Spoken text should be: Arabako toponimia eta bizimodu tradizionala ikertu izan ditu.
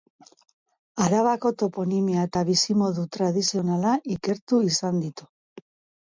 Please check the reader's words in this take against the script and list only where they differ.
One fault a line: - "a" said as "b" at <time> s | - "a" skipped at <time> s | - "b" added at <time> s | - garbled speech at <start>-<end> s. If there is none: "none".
none